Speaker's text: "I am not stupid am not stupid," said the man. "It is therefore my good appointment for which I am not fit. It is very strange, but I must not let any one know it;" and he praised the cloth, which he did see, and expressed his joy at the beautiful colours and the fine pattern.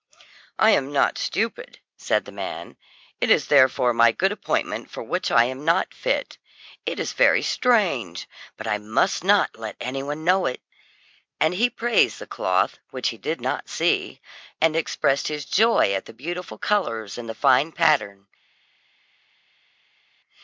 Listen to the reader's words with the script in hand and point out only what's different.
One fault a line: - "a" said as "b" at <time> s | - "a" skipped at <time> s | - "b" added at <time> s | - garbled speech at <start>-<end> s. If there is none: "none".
- "am not stupid" skipped at 1.8 s
- "not" added at 13.4 s